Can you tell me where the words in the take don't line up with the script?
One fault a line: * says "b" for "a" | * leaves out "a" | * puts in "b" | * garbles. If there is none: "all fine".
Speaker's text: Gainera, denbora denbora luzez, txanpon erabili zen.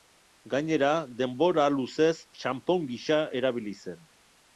* leaves out "denbora"
* puts in "gisa"